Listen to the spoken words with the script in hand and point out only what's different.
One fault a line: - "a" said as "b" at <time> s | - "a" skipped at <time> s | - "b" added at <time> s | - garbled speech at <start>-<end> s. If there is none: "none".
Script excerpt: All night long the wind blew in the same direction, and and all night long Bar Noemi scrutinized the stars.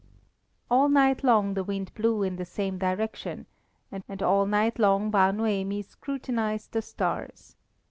none